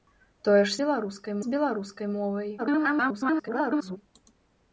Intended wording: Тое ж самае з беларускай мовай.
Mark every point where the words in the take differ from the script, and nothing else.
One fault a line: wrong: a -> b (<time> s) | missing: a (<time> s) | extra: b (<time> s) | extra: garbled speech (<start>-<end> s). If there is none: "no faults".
wrong: самае -> беларускай (0.8 s)
extra: garbled speech (2.6-4.0 s)